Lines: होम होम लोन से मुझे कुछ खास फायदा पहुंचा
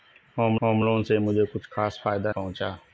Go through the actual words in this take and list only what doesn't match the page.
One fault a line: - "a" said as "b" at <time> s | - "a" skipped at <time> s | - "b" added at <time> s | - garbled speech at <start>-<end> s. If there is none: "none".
none